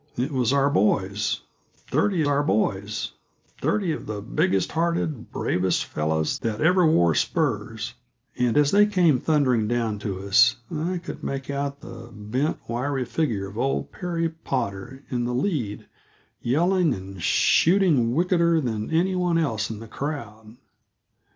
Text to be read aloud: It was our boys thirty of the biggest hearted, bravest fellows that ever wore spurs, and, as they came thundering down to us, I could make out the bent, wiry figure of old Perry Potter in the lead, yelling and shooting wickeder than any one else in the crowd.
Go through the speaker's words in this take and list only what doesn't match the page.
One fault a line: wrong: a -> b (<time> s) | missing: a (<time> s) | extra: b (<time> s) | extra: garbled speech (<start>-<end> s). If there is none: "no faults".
extra: our boys thirty (2.2 s)